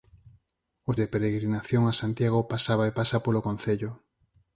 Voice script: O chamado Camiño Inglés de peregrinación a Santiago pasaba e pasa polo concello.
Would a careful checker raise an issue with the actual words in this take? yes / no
yes